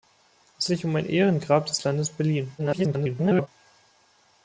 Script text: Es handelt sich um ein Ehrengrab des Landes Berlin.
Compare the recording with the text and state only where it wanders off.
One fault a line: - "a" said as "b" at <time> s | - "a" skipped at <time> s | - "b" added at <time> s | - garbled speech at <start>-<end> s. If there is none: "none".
- "handelt" skipped at 0.7 s
- garbled speech at 2.6-3.5 s